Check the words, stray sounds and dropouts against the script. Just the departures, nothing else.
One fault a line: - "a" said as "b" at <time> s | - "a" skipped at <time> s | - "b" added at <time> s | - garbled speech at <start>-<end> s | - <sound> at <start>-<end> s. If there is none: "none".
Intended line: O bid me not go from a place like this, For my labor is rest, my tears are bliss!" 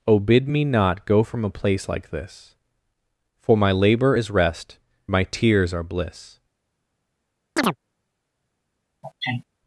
- chirp at 7.6-7.8 s
- sneeze at 9.0-9.4 s